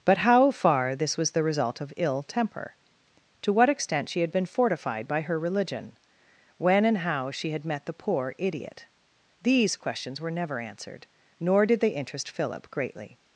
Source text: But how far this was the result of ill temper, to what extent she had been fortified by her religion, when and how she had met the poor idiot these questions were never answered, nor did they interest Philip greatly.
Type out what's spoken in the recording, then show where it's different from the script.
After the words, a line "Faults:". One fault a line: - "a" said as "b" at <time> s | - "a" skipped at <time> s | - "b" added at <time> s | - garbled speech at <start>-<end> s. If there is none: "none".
But how far this was the result of ill temper, to what extent she had been fortified by her religion, when and how she had met the poor idiot these questions were never answered, nor did they interest Philip greatly.
Faults:
none